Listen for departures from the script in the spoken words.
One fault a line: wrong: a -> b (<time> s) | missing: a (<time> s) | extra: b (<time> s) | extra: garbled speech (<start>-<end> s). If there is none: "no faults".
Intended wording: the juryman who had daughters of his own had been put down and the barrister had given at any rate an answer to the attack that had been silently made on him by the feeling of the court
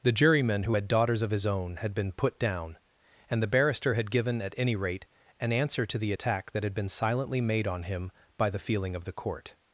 no faults